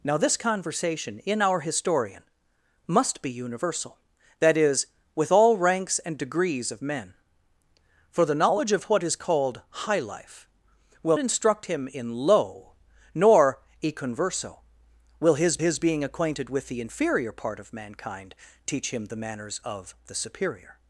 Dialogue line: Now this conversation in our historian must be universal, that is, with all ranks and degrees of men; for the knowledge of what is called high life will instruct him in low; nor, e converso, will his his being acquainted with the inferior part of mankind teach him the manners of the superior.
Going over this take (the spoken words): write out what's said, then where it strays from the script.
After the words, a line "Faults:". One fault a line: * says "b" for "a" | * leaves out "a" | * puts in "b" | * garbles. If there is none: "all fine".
Now this conversation in our historian must be universal, that is, with all ranks and degrees of men; for the knowledge of what is called high life will instruct him in low; nor, e converso, will his his being acquainted with the inferior part of mankind teach him the manners of the superior.
Faults:
all fine